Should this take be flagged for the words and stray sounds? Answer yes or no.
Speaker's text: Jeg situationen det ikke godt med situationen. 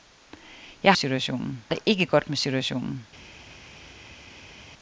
no